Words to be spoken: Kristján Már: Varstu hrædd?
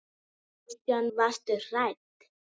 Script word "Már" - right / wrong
wrong